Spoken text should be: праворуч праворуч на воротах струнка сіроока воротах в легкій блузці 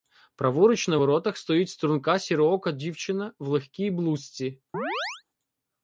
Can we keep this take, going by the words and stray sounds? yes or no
no